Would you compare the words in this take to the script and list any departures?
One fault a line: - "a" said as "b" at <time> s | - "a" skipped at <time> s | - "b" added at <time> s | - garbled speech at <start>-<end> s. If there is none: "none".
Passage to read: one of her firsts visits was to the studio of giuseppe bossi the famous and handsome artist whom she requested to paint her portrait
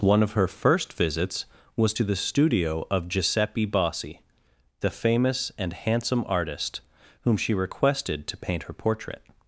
- "firsts" said as "first" at 0.5 s